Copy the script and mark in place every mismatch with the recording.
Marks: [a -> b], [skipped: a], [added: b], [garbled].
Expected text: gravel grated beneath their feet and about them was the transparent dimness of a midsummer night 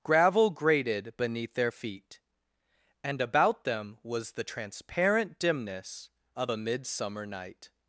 gravel grated beneath their feet and about them was the transparent dimness of a midsummer night